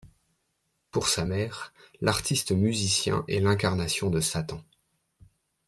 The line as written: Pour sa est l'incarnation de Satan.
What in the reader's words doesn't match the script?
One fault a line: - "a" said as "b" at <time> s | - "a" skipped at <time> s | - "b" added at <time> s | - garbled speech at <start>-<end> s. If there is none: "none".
- "mère l'artiste musicien" added at 1.2 s